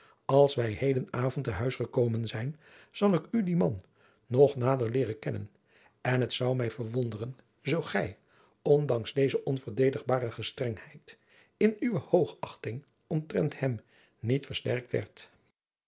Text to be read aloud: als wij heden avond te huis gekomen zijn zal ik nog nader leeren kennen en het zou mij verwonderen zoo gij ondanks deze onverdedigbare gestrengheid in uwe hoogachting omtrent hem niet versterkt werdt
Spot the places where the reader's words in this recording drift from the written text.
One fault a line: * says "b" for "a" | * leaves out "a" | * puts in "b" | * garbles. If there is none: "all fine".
* puts in "u dien man"